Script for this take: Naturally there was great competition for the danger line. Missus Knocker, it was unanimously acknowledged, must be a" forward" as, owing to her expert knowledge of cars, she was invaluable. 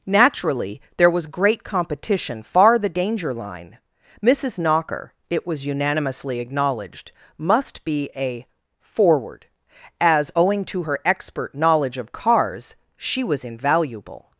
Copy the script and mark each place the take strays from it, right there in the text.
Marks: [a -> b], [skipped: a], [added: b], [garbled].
Naturally there was great competition [for -> far] the danger line. Missus Knocker, it was unanimously acknowledged, must be a" forward" as, owing to her expert knowledge of cars, she was invaluable.